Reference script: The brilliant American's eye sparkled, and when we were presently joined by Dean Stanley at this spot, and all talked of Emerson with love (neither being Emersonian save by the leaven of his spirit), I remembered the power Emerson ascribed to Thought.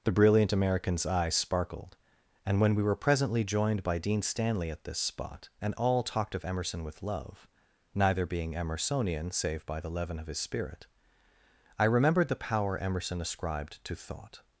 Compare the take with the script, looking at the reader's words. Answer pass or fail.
pass